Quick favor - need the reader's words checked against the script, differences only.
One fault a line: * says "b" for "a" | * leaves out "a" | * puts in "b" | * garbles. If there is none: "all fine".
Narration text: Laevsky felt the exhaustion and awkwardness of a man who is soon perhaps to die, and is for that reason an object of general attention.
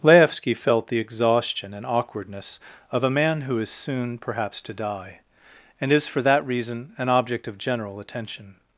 all fine